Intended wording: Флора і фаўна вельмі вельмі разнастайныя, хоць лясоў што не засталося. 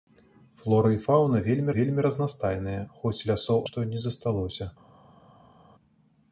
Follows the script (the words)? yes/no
yes